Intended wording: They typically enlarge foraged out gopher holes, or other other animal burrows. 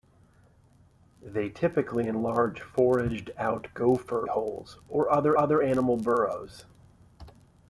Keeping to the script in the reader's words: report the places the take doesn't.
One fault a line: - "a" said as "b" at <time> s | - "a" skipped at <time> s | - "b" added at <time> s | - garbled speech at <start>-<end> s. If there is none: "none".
none